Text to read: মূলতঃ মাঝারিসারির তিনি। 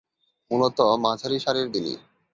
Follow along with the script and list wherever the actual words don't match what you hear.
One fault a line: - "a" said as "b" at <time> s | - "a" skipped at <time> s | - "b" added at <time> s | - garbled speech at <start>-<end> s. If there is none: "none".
none